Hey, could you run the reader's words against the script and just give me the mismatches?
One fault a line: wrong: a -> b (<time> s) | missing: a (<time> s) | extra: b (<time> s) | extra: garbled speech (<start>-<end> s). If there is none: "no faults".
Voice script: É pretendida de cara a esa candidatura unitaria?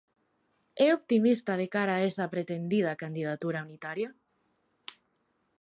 wrong: pretendida -> optimista (1.0 s)
extra: pretendida (2.3 s)